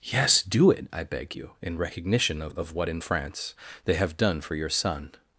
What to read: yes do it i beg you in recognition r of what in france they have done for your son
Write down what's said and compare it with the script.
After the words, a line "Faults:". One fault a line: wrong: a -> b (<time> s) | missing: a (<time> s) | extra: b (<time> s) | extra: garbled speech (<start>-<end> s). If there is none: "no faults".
yes do it i beg you in recognition of of what in france they have done for your son
Faults:
wrong: r -> of (2.4 s)